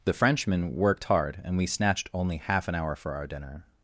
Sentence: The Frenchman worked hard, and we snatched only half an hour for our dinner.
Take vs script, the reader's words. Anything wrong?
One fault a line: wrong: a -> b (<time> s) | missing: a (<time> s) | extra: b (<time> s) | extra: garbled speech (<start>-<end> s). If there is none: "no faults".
no faults